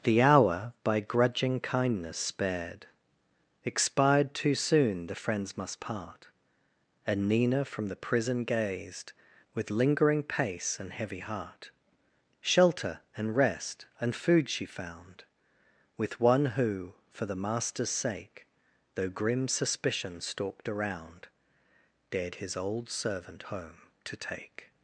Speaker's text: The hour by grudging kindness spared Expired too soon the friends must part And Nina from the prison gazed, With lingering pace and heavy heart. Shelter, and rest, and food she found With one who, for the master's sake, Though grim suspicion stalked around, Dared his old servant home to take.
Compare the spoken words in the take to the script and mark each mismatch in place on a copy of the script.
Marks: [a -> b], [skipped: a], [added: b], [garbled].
The hour by grudging kindness spared Expired too soon the friends must part And Nina from the prison gazed, With lingering pace and heavy heart. Shelter, and rest, and food she found With one who, for the master's sake, Though grim suspicion stalked around, Dared his old servant home to take.